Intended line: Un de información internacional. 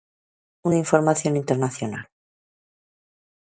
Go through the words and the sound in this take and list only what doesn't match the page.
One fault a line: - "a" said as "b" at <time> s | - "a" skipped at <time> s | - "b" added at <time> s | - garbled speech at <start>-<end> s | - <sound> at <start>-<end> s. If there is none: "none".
none